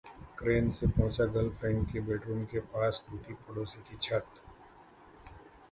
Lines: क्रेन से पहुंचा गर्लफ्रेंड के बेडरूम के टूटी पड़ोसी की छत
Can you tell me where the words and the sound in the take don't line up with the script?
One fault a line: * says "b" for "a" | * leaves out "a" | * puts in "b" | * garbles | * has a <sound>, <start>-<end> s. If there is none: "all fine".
* puts in "पास"